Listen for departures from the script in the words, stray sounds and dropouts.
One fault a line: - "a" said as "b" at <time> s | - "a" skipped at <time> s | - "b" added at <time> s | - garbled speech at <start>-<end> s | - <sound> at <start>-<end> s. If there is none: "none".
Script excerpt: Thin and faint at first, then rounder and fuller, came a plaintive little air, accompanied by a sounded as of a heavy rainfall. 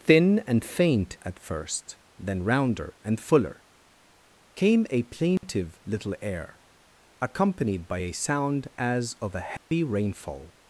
- dropout at 5.4-5.4 s
- "sounded" said as "sound" at 8.1 s
- dropout at 9.6-9.7 s